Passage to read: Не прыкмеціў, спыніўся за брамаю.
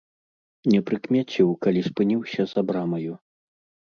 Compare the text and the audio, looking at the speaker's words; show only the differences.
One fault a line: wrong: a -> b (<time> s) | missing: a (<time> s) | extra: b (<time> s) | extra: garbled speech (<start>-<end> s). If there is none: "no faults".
extra: калі (1.6 s)